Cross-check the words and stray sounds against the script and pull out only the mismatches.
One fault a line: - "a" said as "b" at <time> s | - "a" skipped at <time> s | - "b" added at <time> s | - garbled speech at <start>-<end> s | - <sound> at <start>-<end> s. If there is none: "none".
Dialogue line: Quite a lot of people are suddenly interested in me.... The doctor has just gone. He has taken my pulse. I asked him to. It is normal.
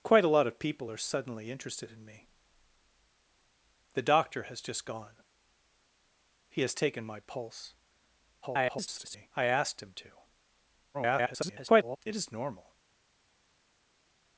- garbled speech at 8.4-9.3 s
- garbled speech at 10.9-12.0 s